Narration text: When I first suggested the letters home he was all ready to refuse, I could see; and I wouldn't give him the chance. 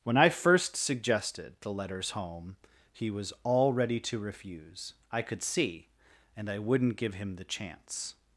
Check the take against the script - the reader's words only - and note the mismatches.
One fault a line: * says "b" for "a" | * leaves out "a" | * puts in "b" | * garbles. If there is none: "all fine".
all fine